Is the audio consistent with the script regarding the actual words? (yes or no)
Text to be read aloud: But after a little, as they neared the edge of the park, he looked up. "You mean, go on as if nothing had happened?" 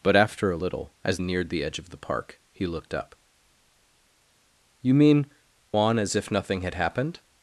no